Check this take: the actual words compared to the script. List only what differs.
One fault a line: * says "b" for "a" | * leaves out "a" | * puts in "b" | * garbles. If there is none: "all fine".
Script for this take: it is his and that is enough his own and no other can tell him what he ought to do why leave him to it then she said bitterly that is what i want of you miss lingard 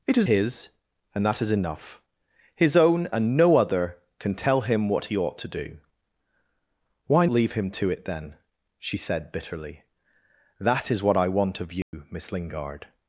all fine